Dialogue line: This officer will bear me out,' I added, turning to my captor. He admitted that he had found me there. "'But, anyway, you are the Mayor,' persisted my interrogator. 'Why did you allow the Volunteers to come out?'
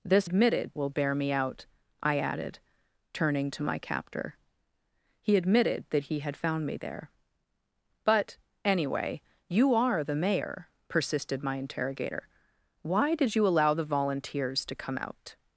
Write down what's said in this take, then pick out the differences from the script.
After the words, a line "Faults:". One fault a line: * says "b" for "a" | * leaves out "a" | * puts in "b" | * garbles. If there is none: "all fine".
This admitted will bear me out,' I added, turning to my captor. He admitted that he had found me there. "'But, anyway, you are the Mayor,' persisted my interrogator. 'Why did you allow the Volunteers to come out?'
Faults:
* says "admitted" for "officer"